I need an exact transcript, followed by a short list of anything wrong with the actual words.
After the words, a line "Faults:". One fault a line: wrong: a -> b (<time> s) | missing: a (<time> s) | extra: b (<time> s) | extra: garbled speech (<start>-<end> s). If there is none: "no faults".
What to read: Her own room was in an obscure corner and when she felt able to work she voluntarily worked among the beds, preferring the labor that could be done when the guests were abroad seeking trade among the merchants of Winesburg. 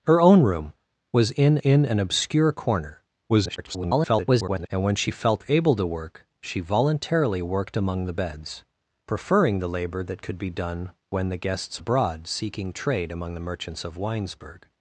Her own room was in in an obscure corner [garbled] and when she felt able to work she voluntarily worked among the beds, preferring the labor that could be done when the guests abroad seeking trade among the merchants of Winesburg.
Faults:
extra: in (1.6 s)
extra: garbled speech (3.3-4.7 s)
missing: were (11.8 s)